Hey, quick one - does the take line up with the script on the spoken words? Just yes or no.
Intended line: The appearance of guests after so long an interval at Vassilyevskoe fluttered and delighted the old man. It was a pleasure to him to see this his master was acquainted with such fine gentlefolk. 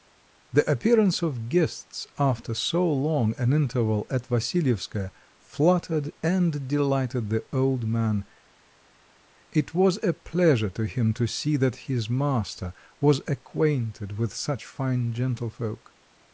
no